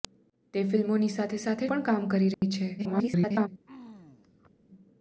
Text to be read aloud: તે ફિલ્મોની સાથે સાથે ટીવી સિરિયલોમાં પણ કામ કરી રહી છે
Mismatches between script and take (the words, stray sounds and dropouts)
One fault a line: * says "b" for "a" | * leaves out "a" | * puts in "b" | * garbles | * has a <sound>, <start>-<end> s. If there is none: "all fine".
* leaves out "ટીવી સિરિયલોમાં"
* has a dropout, 2.3-2.4 s
* garbles
* has a throat clearing, 3.7-4.6 s